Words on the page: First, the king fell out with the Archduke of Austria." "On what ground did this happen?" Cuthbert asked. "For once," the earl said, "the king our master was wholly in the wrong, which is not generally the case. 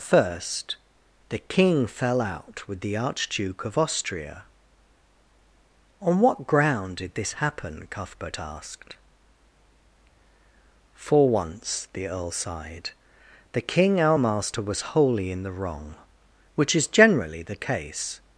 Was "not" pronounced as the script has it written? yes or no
no